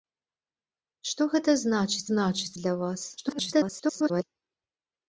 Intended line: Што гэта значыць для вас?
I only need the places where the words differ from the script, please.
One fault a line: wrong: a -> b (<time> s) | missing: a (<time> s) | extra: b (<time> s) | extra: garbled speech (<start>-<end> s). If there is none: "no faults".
extra: значыць (2.1 s)
extra: garbled speech (3.2-4.2 s)